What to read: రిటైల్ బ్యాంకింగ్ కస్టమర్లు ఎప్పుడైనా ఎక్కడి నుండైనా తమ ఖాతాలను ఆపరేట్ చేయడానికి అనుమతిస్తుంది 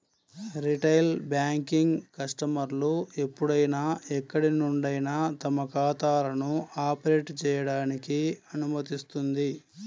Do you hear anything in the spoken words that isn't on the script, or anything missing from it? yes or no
no